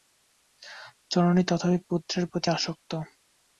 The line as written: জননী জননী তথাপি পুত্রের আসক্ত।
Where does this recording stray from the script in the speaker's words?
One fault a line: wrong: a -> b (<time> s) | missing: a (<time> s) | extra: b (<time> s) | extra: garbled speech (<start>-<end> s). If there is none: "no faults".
missing: জননী (1.4 s)
extra: প্রতি (2.3 s)